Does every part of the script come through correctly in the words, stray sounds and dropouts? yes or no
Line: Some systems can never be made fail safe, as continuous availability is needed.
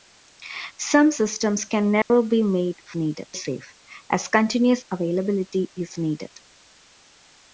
no